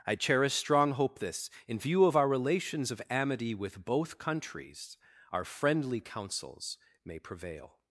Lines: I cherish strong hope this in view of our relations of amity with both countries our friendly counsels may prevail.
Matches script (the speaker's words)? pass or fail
pass